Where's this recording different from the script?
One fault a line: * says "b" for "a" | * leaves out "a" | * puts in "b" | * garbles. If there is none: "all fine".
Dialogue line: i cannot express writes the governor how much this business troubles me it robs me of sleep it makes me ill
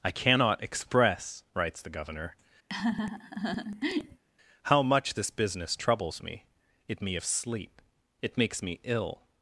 * leaves out "robs"